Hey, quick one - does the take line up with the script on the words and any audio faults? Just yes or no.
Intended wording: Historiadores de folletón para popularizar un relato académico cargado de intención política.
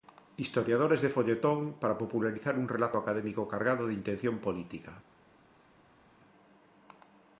yes